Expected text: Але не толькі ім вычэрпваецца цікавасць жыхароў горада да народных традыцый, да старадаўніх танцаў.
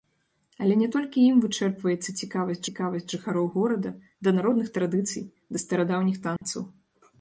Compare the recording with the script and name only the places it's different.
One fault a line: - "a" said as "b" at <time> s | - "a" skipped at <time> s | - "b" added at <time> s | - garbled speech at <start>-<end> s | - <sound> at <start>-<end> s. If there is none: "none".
- "цікавасць" added at 2.7 s
- dropout at 6.4-6.4 s